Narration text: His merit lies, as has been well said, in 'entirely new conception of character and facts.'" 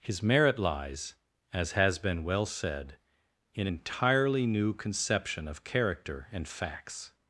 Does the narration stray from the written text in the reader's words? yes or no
no